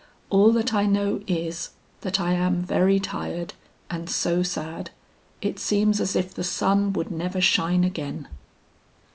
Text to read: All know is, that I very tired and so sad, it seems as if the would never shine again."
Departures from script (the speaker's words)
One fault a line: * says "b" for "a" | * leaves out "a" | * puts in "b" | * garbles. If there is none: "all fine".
* puts in "that I"
* puts in "am"
* puts in "sun"